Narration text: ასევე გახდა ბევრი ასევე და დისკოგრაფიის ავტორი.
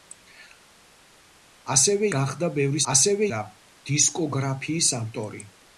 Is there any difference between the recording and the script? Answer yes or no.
no